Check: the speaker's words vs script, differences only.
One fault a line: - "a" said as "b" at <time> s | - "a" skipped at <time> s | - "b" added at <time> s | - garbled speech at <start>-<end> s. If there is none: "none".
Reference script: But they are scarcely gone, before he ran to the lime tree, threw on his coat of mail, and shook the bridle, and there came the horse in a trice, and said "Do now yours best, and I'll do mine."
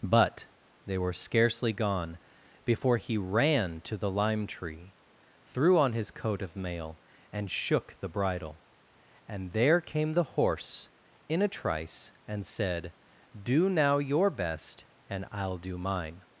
- "are" said as "were" at 1.0 s
- "yours" said as "your" at 14.0 s